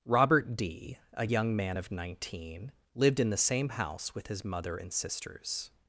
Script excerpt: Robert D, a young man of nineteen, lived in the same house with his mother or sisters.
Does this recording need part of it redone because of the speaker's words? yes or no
yes